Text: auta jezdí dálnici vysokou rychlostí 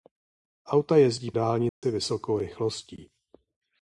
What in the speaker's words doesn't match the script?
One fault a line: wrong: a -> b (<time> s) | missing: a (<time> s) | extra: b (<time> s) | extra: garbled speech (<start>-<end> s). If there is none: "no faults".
no faults